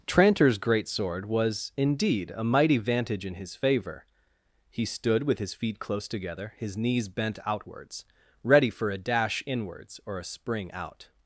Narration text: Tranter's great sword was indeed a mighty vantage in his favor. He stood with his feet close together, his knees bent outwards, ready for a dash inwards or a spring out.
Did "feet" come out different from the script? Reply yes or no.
no